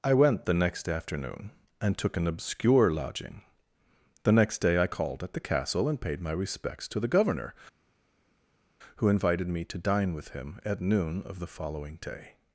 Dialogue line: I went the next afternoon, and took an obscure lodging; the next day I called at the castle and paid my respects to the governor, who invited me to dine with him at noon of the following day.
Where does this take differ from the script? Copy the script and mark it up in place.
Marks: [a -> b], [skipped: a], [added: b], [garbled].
I went the next afternoon, and took an obscure lodging; the next day I called at the castle and paid my respects to the governor, who invited me to dine with him at noon of the following day.